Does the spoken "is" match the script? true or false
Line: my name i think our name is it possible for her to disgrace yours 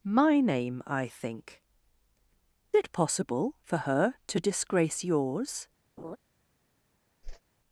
false